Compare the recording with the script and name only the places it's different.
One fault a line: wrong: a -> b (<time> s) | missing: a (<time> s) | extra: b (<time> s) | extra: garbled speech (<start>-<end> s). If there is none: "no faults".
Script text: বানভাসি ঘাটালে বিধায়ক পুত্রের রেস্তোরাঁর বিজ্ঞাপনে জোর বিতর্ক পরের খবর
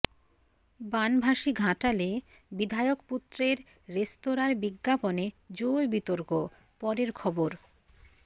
no faults